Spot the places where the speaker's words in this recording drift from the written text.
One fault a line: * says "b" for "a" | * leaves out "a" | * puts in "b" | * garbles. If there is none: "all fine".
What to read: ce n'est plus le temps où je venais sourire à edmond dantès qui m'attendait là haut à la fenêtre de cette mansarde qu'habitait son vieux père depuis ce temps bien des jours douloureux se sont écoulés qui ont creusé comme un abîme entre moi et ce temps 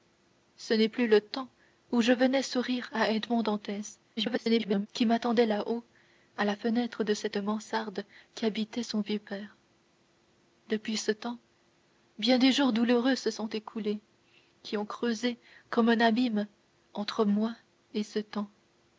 * garbles